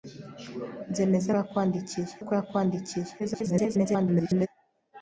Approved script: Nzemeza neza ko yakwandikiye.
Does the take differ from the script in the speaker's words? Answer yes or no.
yes